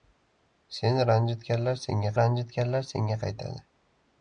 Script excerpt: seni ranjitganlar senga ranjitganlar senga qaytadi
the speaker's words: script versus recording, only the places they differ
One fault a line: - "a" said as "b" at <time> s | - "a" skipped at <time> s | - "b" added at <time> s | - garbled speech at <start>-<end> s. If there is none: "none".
none